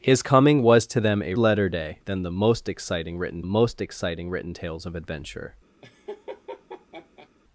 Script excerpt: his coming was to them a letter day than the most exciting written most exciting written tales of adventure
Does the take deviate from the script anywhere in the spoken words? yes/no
no